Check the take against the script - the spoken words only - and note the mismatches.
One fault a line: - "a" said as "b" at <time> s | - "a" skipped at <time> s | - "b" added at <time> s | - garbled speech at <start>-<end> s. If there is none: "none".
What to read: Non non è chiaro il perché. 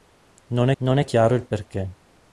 none